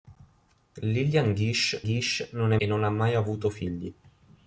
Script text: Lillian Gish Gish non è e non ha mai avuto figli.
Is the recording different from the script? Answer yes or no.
no